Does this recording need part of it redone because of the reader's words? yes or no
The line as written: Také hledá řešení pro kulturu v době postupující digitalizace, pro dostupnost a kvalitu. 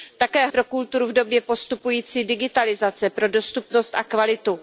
yes